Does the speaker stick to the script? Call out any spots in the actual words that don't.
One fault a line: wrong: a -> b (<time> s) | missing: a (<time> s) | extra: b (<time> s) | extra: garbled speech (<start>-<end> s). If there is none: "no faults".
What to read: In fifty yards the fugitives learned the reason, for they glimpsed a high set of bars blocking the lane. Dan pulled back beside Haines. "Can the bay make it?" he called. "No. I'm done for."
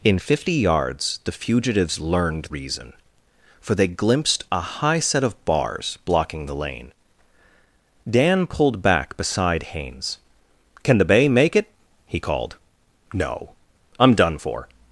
missing: the (2.5 s)